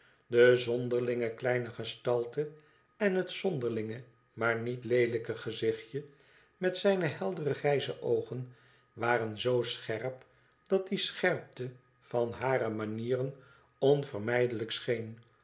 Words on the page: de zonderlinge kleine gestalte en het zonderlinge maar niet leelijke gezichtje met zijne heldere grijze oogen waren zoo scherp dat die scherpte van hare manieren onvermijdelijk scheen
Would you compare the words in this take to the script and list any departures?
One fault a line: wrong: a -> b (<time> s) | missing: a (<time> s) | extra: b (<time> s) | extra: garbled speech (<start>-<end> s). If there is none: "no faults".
no faults